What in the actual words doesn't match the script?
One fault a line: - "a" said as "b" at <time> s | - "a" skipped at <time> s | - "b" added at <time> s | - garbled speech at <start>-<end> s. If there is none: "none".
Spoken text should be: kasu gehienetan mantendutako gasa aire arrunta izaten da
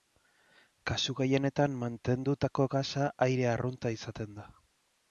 none